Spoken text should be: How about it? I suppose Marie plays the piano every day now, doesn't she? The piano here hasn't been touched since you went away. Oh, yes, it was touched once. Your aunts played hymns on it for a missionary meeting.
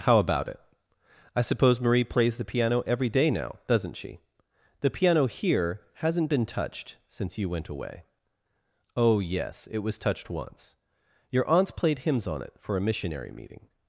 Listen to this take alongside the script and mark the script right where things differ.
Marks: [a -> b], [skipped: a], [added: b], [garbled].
How about it? I suppose Marie plays the piano every day now, doesn't she? The piano here hasn't been touched since you went away. Oh, yes, it was touched once. Your aunts played hymns on it for a missionary meeting.